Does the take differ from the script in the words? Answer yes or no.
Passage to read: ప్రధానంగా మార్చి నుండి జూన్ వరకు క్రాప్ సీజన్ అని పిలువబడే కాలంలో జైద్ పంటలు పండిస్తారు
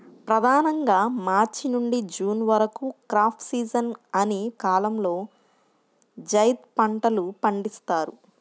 yes